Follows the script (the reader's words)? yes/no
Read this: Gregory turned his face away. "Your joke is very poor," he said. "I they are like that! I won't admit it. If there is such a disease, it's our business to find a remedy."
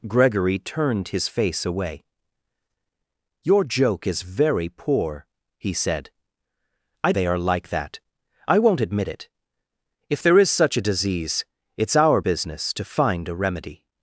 yes